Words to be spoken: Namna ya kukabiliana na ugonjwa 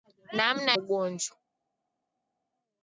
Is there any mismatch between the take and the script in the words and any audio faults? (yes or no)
yes